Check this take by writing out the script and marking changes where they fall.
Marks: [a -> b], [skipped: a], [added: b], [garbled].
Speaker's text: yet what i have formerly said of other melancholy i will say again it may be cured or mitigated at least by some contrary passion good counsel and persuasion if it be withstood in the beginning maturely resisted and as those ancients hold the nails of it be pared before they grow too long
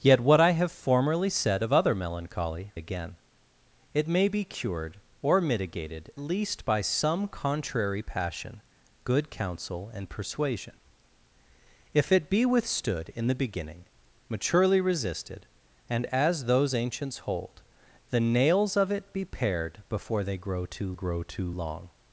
yet what i have formerly said of other melancholy [skipped: i will say] again it may be cured or mitigated [skipped: at] least by some contrary passion good counsel and persuasion if it be withstood in the beginning maturely resisted and as those ancients hold the nails of it be pared before they grow too [added: grow too] long